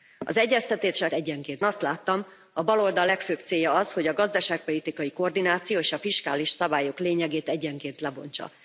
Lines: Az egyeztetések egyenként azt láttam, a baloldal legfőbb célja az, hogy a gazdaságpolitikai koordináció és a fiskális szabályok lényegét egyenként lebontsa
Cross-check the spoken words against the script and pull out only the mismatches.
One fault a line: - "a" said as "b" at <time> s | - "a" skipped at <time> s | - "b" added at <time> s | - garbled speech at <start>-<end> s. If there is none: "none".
none